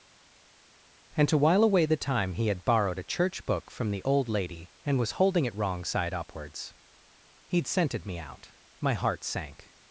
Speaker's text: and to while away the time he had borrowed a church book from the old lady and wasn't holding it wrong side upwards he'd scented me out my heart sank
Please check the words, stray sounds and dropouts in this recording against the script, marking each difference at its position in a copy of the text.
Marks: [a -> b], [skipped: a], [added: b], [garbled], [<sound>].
and to while away the time he had borrowed a church book from the old lady and [wasn't -> was] holding it wrong side upwards he'd scented me out my heart sank